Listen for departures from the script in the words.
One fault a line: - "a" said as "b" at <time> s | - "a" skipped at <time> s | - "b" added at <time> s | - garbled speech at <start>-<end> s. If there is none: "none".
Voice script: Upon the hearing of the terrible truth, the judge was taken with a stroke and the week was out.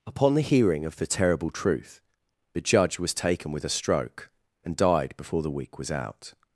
- "died before" added at 4.8 s